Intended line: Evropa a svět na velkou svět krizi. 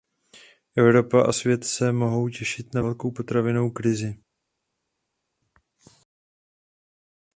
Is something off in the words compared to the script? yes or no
yes